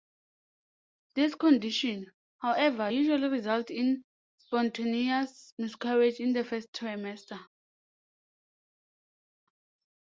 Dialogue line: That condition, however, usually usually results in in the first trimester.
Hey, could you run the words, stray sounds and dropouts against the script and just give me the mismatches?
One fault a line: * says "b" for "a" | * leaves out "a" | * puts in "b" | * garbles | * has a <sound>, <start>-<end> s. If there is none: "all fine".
* says "This" for "That"
* leaves out "usually"
* puts in "spontaneous miscarriage"